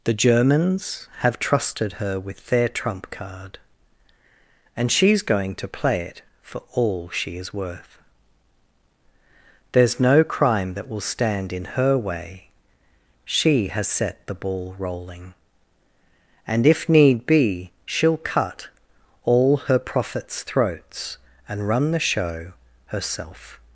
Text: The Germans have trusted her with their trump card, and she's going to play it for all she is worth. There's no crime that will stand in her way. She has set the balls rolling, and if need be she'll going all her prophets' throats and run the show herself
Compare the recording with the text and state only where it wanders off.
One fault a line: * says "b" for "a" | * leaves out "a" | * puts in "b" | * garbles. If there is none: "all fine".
* says "ball" for "balls"
* says "cut" for "going"